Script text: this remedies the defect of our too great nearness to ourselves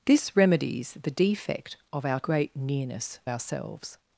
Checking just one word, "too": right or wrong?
wrong